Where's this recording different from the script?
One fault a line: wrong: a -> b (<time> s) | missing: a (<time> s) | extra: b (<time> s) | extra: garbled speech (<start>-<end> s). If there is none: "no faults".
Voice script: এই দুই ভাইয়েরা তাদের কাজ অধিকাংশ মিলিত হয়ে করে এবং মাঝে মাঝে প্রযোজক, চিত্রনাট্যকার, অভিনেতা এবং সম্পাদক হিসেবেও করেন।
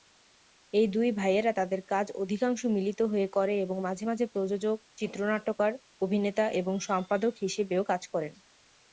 extra: কাজ (7.8 s)